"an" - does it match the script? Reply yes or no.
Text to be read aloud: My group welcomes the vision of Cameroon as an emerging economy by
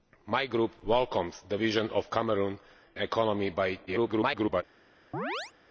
no